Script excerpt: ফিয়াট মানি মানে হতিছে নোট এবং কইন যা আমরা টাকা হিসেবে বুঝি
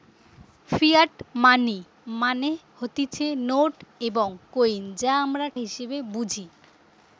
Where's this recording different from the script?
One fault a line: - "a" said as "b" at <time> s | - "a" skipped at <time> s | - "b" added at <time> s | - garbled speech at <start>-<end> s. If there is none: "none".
- "টাকা" skipped at 5.5 s